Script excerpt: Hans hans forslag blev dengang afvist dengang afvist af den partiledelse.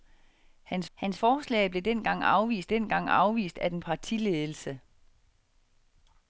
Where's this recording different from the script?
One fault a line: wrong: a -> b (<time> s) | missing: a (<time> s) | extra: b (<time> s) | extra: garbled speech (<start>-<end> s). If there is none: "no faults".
no faults